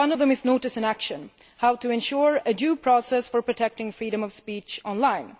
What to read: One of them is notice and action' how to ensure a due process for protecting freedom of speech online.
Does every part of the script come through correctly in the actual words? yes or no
yes